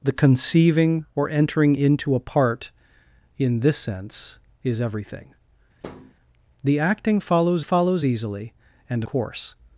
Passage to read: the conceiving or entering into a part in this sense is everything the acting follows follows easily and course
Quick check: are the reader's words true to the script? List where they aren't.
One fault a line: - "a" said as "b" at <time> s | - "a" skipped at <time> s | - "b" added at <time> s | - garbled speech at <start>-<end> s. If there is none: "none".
none